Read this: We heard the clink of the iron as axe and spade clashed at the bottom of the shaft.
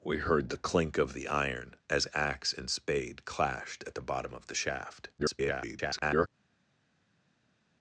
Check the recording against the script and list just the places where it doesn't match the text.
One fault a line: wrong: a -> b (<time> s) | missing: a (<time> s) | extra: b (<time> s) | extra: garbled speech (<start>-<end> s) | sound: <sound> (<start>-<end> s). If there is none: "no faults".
extra: garbled speech (5.2-6.3 s)